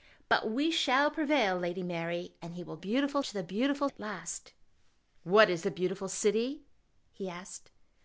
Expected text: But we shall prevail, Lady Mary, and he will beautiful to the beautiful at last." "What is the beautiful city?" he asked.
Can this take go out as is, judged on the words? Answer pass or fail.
pass